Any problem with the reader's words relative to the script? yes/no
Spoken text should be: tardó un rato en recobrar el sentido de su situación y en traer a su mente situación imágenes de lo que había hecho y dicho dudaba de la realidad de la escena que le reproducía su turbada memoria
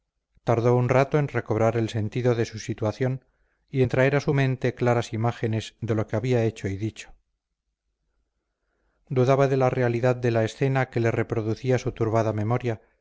yes